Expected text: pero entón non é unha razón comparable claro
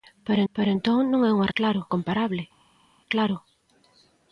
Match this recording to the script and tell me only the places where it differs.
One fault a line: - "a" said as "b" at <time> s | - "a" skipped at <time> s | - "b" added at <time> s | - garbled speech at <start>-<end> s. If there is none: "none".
- "pero" added at 0.5 s
- "razón" said as "claro" at 1.6 s